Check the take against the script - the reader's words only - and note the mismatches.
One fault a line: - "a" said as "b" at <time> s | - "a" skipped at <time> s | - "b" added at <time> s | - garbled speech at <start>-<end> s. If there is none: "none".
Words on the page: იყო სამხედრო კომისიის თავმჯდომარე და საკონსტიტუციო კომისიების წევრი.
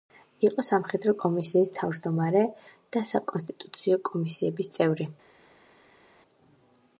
none